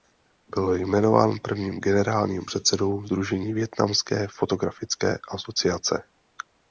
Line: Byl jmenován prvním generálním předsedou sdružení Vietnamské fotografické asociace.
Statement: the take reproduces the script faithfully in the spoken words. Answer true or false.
true